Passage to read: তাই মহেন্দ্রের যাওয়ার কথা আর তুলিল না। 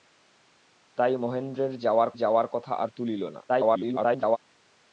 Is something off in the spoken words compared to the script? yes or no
yes